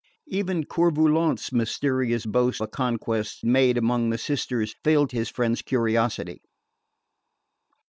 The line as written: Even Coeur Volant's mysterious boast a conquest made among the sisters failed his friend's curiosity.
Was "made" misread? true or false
false